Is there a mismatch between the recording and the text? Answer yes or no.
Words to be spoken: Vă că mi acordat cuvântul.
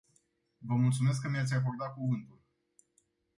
yes